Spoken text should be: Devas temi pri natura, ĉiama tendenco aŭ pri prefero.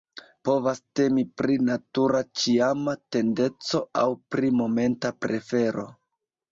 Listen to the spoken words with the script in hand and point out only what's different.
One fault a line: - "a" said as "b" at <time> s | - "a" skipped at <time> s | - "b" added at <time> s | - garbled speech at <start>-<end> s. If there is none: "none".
- "Devas" said as "Povas" at 0.5 s
- "momenta" added at 4.6 s